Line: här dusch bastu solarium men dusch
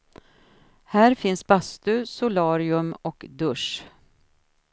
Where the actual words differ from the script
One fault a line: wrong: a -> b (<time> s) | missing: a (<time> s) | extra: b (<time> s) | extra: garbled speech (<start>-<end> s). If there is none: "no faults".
wrong: dusch -> finns (1.1 s)
wrong: men -> och (3.0 s)